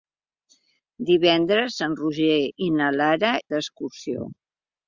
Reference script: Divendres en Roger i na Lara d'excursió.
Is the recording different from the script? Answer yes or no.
no